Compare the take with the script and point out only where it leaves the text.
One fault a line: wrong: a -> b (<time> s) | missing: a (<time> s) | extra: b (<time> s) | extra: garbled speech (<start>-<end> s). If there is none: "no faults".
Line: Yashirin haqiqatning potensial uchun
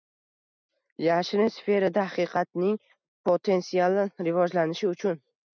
extra: sferada (1.6 s)
extra: rivojlanishi (4.3 s)